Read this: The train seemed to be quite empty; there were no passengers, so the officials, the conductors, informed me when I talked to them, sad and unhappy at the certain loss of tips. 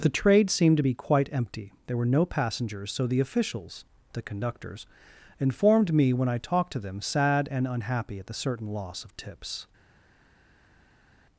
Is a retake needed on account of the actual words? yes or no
yes